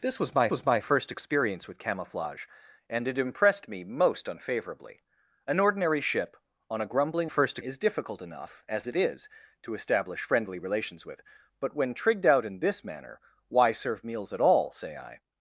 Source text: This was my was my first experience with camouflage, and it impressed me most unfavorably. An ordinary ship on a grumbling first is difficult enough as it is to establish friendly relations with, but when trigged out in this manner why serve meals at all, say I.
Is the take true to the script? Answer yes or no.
yes